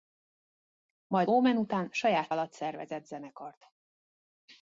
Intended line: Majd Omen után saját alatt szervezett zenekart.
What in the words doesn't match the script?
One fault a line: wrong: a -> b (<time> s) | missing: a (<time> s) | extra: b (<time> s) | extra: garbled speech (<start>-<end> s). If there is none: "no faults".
no faults